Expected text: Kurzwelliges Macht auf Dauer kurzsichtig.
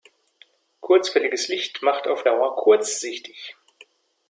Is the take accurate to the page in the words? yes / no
no